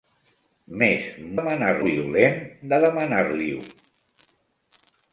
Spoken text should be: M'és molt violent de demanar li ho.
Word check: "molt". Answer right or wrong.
wrong